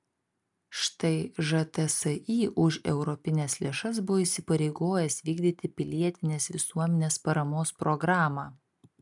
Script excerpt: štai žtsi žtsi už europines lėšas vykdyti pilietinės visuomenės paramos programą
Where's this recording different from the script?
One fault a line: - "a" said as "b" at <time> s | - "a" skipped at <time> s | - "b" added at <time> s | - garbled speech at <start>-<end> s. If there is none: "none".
- "žtsi" skipped at 2.4 s
- "buvo įsipareigojęs" added at 4.1 s